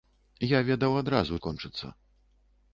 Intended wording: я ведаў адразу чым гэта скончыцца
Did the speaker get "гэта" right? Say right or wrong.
wrong